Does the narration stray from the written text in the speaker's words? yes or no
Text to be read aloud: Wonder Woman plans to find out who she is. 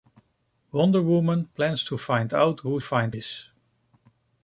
yes